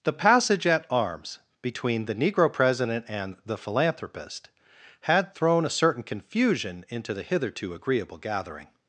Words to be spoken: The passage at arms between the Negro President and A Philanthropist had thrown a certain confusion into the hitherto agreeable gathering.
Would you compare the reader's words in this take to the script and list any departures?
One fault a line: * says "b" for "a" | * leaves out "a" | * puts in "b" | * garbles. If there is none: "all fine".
* says "The" for "A"